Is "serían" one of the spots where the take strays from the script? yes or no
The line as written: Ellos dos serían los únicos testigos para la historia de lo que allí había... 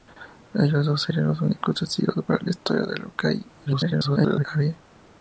no